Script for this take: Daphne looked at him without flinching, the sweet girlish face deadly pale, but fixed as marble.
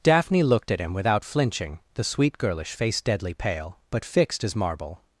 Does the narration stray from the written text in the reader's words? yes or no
no